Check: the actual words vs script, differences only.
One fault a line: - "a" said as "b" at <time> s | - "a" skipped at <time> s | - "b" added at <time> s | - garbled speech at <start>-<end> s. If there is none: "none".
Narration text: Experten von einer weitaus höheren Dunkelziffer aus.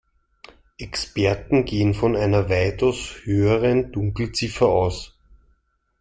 - "gehen" added at 1.6 s